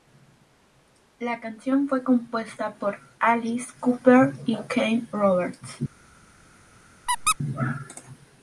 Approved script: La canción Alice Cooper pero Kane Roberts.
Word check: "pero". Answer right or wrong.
wrong